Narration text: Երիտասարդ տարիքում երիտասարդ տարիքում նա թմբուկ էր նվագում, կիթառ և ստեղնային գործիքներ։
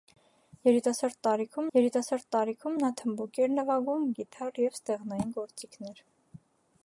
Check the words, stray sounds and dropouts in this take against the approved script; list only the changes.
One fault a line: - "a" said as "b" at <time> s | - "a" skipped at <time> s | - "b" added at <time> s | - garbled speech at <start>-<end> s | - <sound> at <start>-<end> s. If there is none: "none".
none